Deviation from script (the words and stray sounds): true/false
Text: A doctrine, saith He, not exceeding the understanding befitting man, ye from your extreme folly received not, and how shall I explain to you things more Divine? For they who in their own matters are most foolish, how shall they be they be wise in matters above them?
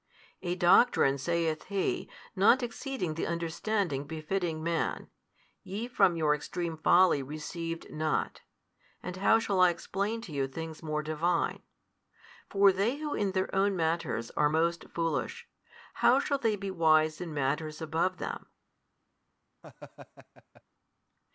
true